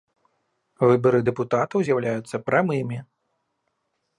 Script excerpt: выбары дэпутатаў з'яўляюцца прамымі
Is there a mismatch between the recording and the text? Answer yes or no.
no